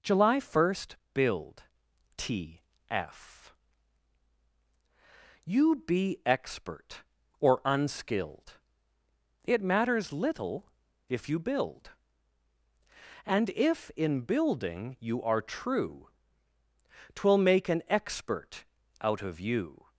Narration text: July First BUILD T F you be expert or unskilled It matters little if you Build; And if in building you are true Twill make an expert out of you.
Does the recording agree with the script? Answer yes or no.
yes